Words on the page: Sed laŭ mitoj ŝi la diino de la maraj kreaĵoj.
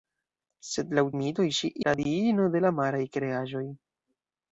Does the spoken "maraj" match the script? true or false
true